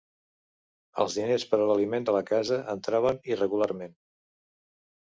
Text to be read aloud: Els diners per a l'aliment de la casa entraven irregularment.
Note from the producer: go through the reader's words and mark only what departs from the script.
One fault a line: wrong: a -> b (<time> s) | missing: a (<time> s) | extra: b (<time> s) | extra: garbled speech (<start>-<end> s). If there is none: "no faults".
no faults